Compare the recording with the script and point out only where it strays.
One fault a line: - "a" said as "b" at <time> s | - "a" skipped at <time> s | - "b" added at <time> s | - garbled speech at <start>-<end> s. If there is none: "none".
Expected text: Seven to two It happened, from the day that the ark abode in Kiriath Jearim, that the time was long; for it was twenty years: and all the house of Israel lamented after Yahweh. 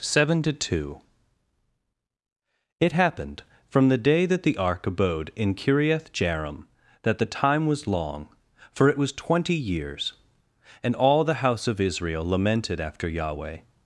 none